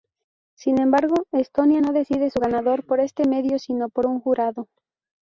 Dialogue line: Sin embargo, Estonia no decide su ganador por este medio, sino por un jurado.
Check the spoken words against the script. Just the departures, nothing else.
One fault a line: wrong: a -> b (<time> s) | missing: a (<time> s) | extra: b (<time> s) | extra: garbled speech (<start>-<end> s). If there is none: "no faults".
no faults